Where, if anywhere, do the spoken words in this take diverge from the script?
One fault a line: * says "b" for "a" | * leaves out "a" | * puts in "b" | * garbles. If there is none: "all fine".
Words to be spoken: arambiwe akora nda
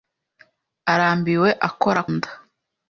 all fine